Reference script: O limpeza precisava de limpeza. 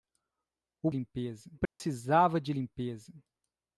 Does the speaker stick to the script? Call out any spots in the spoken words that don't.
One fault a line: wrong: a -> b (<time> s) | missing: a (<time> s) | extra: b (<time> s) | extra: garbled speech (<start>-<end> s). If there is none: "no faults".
no faults